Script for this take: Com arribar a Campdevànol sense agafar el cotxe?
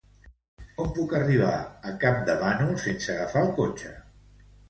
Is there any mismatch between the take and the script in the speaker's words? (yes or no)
yes